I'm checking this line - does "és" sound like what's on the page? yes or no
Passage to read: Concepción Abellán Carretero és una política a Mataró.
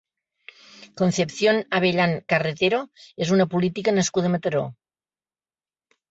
yes